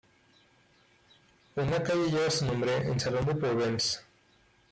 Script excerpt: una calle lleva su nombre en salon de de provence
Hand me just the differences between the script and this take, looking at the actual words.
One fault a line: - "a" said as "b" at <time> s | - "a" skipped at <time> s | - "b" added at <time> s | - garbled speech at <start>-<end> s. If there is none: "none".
- "de" skipped at 3.4 s